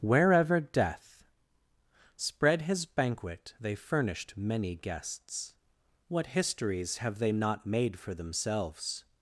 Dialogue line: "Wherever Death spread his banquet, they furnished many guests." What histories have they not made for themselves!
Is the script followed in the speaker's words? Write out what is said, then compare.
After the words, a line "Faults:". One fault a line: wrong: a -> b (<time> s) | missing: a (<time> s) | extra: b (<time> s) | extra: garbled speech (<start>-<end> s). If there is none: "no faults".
"Wherever Death spread his banquet, they furnished many guests." What histories have they not made for themselves!
Faults:
no faults